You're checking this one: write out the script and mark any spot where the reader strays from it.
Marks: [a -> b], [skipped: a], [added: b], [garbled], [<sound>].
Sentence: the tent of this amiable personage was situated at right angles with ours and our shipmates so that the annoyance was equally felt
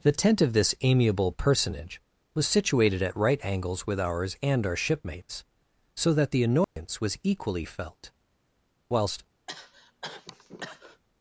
the tent of this amiable personage was situated at right angles with ours and our shipmates so that the annoyance [dropout] was equally felt [added: whilst] [cough]